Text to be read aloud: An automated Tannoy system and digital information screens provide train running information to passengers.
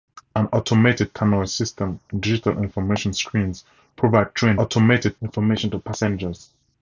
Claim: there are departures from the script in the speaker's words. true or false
true